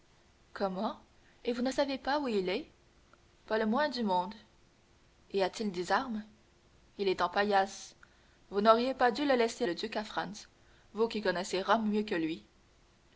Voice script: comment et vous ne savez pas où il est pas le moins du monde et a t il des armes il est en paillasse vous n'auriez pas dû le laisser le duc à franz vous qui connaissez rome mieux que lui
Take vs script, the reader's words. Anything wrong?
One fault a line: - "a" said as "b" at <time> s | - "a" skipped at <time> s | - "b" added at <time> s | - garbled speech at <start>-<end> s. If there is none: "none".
none